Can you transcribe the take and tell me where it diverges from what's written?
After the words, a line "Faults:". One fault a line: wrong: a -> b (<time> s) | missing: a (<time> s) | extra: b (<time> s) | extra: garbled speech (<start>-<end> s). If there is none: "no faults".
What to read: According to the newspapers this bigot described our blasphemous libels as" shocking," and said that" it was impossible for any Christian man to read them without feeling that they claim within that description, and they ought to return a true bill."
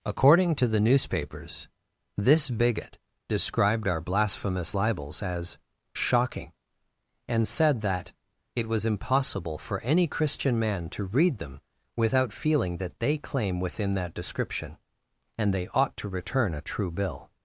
According to the newspapers this bigot described our blasphemous libels as" shocking," and said that" it was impossible for any Christian man to read them without feeling that they claim within that description, and they ought to return a true bill."
Faults:
no faults